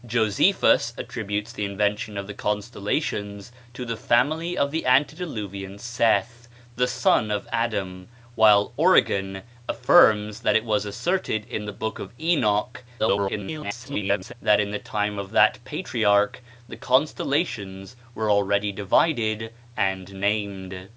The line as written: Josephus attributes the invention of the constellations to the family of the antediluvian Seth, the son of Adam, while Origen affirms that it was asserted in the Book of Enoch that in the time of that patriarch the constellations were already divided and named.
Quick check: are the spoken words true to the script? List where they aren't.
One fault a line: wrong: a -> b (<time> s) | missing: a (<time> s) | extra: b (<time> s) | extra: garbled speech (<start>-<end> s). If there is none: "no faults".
extra: garbled speech (13.0-14.3 s)